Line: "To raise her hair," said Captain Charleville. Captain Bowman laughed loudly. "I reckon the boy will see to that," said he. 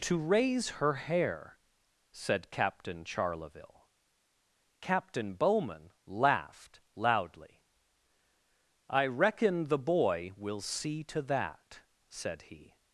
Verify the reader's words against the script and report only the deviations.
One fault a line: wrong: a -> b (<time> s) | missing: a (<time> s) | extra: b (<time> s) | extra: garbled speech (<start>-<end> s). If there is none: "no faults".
no faults